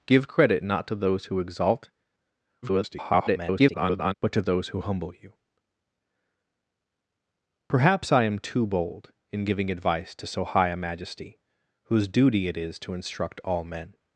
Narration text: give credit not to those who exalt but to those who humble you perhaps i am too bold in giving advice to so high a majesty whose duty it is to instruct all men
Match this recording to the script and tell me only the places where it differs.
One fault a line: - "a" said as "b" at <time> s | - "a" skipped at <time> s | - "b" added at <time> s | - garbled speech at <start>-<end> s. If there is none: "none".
- garbled speech at 2.6-4.1 s